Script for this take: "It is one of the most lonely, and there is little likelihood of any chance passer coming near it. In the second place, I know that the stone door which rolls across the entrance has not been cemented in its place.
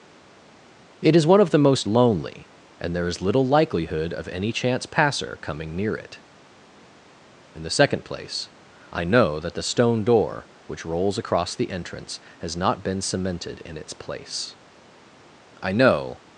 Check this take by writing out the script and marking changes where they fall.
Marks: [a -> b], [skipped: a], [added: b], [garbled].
"It is one of the most lonely, and there is little likelihood of any chance passer coming near it. In the second place, I know that the stone door which rolls across the entrance has not been cemented in its place. [added: I know]